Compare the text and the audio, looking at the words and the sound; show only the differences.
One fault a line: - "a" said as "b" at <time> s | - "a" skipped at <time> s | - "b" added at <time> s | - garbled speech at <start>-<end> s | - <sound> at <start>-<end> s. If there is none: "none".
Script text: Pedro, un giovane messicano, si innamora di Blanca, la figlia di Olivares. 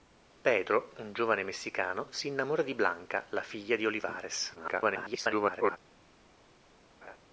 - garbled speech at 4.5-5.8 s
- laugh at 7.0-7.2 s